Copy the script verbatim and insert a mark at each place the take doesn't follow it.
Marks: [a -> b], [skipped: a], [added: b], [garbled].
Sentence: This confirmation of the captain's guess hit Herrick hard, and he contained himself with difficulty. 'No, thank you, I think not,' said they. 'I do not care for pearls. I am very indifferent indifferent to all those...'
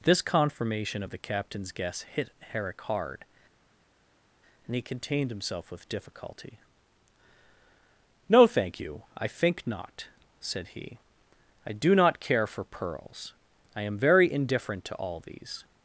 This confirmation of the captain's guess hit Herrick hard, and he contained himself with difficulty. 'No, thank you, I think not,' said [they. -> he] 'I do not care for pearls. I am very indifferent [skipped: indifferent] to all [those...' -> these]